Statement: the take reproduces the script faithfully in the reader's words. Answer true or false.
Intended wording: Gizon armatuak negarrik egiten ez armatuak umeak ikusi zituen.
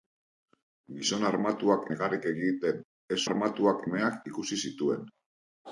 true